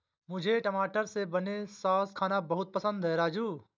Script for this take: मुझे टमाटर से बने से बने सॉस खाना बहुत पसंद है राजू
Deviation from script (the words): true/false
true